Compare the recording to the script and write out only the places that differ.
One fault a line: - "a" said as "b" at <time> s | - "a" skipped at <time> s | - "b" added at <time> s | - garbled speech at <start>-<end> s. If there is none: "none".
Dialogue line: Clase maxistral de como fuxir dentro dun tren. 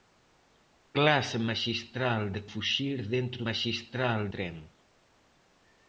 - "como" skipped at 2.4 s
- "dun" said as "maxistral" at 3.5 s